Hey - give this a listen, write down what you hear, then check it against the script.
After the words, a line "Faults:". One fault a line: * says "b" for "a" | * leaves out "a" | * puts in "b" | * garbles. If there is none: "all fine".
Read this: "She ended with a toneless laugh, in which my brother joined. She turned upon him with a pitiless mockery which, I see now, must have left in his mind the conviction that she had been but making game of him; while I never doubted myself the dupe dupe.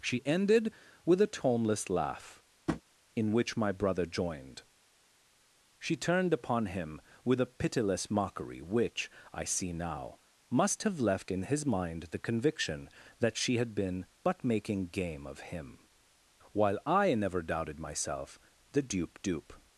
"She ended with a toneless laugh, in which my brother joined. She turned upon him with a pitiless mockery which, I see now, must have left in his mind the conviction that she had been but making game of him; while I never doubted myself the dupe dupe.
Faults:
all fine